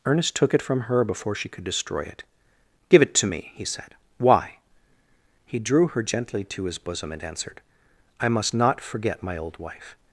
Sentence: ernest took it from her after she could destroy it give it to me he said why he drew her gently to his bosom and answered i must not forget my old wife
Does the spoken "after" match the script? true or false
false